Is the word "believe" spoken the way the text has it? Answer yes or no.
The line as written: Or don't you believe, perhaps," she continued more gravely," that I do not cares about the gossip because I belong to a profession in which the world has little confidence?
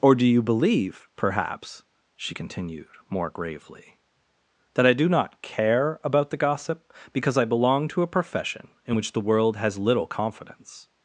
yes